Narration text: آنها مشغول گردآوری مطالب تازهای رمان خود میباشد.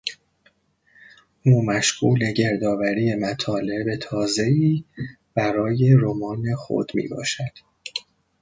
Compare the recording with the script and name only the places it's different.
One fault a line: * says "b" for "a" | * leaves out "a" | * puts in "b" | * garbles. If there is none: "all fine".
* says "او" for "آنها"
* puts in "برای"